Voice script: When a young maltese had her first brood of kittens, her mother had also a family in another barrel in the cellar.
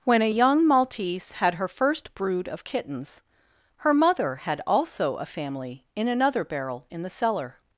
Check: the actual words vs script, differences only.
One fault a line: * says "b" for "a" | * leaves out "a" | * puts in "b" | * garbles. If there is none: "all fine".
all fine